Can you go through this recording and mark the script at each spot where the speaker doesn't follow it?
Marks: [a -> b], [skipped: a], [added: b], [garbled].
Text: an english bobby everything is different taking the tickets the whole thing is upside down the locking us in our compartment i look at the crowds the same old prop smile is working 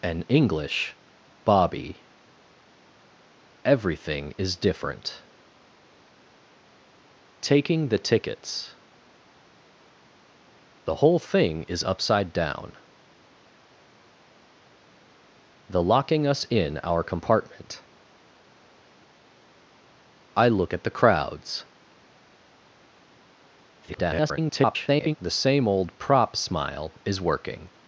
an english bobby everything is different taking the tickets the whole thing is upside down the locking us in our compartment i look at the crowds [garbled] the same old prop smile is working